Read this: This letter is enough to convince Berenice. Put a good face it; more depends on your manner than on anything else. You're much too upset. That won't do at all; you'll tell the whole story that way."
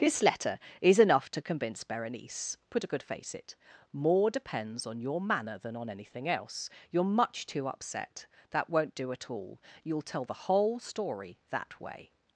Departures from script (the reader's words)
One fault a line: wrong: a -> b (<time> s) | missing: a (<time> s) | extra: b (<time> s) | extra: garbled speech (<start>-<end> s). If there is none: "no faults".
no faults